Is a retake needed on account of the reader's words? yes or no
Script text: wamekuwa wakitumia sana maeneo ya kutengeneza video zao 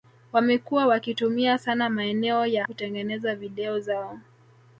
no